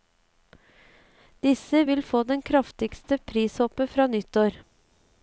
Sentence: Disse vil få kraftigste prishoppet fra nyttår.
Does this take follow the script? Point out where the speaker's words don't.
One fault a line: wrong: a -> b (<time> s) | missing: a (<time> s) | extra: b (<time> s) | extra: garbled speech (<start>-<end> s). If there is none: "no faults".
extra: det (2.3 s)